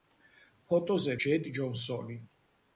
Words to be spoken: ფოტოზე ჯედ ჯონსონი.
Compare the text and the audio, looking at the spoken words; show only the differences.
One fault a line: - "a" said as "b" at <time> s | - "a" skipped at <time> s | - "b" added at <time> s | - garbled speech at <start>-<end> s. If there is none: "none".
none